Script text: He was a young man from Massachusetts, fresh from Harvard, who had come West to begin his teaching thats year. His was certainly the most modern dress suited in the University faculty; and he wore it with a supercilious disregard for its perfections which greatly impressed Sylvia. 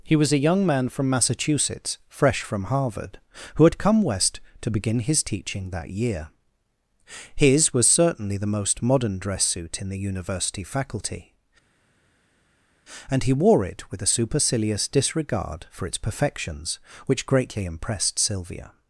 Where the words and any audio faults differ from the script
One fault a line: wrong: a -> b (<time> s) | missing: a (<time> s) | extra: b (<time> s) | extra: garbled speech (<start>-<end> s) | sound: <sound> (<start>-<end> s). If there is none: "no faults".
wrong: thats -> that (5.7 s)
wrong: suited -> suit (9.4 s)